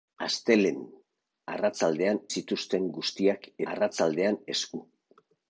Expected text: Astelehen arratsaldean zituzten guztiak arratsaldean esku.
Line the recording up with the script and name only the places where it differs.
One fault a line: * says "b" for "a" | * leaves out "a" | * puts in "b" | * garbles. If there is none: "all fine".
all fine